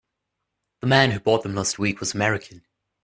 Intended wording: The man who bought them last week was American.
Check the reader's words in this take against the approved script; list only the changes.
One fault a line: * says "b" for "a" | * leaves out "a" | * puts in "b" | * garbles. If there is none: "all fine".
all fine